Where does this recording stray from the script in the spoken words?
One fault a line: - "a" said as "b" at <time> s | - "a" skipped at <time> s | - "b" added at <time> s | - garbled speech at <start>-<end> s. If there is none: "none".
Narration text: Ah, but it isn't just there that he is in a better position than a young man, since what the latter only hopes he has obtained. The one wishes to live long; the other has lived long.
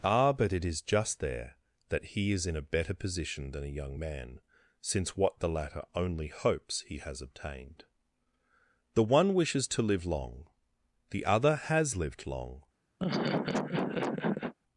- "isn't" said as "is" at 0.7 s